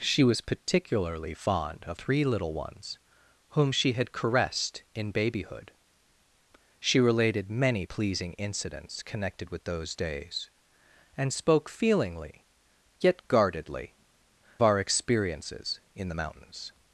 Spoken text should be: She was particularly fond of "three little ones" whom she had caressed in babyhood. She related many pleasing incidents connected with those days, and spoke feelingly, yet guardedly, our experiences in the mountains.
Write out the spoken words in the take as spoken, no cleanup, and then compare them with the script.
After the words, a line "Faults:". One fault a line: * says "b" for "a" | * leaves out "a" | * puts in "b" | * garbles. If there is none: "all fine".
She was particularly fond of "three little ones" whom she had caressed in babyhood. She related many pleasing incidents connected with those days, and spoke feelingly, yet guardedly, our experiences in the mountains.
Faults:
all fine